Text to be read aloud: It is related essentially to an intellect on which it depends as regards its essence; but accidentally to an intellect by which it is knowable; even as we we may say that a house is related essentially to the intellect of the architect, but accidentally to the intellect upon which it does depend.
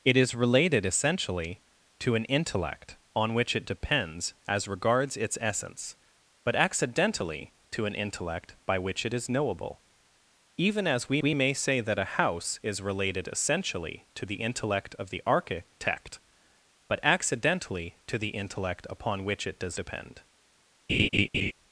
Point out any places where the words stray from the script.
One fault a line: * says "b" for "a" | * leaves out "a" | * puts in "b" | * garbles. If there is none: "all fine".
all fine